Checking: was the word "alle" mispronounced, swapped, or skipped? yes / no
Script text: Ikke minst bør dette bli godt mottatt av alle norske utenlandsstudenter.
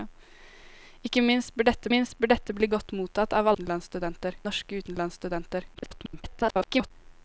yes